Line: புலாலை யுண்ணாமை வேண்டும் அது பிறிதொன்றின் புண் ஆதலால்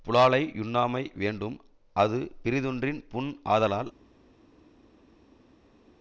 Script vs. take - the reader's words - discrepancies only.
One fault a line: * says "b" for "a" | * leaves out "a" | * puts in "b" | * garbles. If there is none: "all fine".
all fine